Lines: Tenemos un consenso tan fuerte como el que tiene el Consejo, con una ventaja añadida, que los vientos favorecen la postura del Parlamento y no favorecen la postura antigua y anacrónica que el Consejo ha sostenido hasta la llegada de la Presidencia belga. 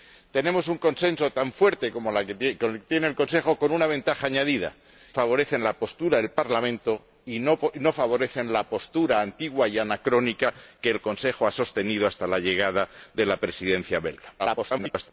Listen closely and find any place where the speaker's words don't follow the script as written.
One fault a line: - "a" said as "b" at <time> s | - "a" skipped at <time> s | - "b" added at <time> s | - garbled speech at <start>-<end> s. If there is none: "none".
- "que los vientos" skipped at 4.7 s
- garbled speech at 14.4-15.1 s